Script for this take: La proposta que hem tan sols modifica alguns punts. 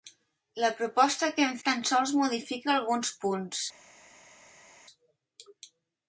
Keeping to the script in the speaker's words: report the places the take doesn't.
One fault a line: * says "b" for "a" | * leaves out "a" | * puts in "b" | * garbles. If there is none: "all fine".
all fine